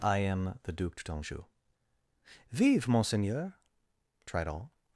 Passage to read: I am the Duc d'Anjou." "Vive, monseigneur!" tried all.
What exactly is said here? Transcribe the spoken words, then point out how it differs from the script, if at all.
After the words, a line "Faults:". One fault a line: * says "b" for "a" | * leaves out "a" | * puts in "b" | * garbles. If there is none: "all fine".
I am the Duc d'Anjou." "Vive, monseigneur!" tried all.
Faults:
all fine